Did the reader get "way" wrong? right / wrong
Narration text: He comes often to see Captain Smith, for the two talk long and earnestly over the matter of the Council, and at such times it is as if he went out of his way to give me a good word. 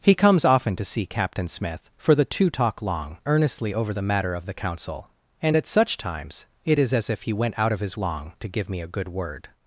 wrong